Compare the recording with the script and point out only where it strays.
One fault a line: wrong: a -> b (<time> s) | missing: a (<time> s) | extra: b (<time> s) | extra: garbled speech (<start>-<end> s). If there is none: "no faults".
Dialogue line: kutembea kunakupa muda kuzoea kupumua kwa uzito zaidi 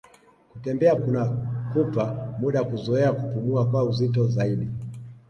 no faults